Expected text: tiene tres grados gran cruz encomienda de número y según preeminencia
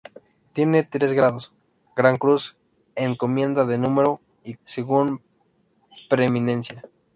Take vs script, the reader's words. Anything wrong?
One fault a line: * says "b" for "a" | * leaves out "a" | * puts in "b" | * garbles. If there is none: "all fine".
all fine